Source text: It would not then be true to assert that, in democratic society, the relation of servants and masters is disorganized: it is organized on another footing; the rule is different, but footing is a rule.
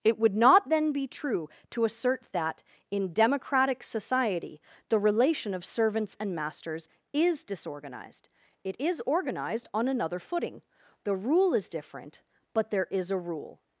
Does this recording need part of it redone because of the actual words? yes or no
yes